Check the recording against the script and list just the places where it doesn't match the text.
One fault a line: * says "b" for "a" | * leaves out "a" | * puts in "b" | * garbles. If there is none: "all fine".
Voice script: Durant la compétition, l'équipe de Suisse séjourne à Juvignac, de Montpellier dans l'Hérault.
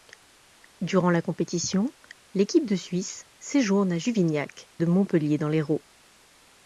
all fine